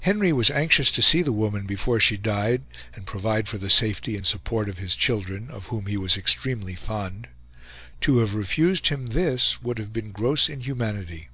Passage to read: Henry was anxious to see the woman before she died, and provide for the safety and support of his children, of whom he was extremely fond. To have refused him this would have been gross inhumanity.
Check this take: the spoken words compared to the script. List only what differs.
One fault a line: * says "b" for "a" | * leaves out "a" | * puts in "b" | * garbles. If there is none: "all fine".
all fine